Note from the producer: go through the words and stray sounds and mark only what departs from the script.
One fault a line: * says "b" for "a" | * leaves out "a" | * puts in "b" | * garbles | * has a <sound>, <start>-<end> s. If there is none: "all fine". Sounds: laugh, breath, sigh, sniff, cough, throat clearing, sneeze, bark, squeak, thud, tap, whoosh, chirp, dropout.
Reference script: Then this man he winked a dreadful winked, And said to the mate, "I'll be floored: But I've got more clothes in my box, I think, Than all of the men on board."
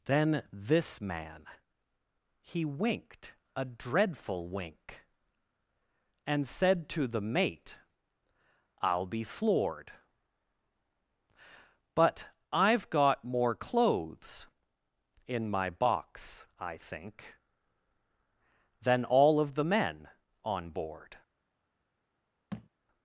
* says "wink" for "winked"
* has a thud, 22.5-22.7 s